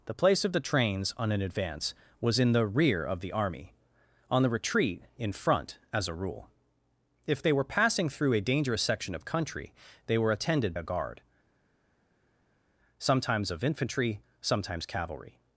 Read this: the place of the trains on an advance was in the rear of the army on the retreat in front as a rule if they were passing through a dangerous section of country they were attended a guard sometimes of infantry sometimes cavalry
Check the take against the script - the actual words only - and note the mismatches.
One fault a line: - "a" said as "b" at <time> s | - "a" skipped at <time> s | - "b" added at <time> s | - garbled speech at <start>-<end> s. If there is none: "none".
none